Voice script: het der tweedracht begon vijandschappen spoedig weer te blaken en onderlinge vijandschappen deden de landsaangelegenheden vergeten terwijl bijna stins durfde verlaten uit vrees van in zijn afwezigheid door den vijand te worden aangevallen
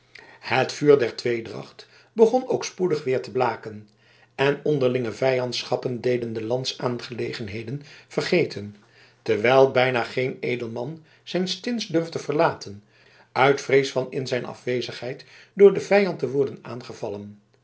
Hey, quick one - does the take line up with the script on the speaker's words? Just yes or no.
no